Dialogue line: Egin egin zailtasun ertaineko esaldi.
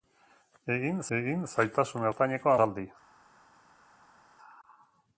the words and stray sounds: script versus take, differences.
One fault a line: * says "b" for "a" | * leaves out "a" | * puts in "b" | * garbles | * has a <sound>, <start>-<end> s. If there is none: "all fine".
all fine